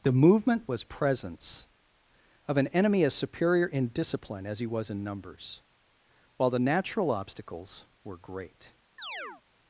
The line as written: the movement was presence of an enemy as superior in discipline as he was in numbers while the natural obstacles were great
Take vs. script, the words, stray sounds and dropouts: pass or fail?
fail